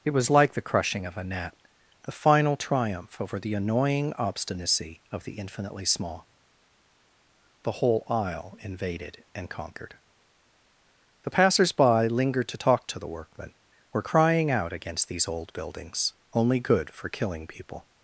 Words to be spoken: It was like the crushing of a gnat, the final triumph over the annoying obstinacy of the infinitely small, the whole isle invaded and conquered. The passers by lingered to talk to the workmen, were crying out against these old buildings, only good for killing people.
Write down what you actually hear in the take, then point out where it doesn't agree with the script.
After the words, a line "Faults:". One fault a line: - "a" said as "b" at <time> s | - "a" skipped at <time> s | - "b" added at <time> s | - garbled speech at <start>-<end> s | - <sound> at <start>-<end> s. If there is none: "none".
It was like the crushing of a gnat, the final triumph over the annoying obstinacy of the infinitely small, the whole isle invaded and conquered. The passers by lingered to talk to the workmen, were crying out against these old buildings, only good for killing people.
Faults:
none